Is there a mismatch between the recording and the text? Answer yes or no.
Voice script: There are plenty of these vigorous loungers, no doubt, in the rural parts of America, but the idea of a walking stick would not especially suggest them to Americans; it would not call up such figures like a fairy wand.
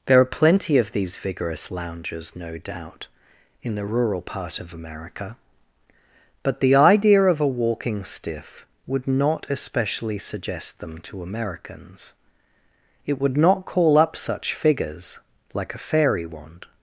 yes